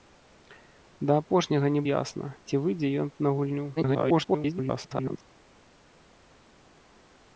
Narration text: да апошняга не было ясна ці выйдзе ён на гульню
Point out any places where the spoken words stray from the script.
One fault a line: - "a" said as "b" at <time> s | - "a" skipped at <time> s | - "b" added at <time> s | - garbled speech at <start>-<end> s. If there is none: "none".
- "было" skipped at 1.8 s
- garbled speech at 3.8-5.2 s